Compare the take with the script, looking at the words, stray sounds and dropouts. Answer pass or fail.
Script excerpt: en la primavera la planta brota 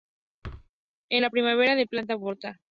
fail